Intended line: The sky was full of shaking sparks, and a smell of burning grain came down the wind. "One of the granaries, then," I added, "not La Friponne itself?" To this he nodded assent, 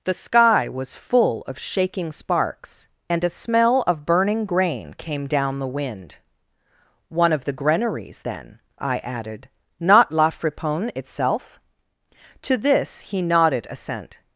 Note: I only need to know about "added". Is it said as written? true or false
true